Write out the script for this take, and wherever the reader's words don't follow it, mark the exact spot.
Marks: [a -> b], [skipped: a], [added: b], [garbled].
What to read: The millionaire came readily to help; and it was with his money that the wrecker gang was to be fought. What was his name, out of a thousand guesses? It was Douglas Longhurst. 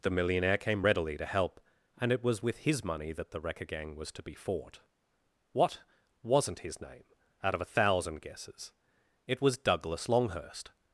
The millionaire came readily to help; and it was with his money that the wrecker gang was to be fought. What [was -> wasn't] his name, out of a thousand guesses? It was Douglas Longhurst.